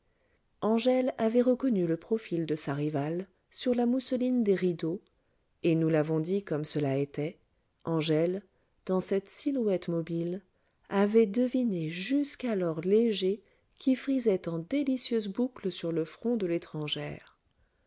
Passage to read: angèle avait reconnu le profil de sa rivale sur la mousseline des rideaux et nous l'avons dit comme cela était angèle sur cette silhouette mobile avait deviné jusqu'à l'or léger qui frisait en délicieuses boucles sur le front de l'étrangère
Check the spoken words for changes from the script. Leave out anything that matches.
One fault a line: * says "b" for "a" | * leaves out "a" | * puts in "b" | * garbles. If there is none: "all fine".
* says "dans" for "sur"